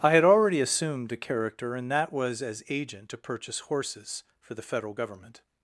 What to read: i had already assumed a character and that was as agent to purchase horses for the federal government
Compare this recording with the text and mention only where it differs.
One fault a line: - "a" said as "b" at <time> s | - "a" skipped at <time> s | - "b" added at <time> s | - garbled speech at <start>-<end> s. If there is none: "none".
none